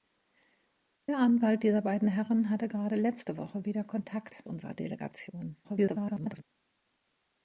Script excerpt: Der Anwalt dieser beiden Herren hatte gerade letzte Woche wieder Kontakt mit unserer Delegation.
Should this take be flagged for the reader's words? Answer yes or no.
yes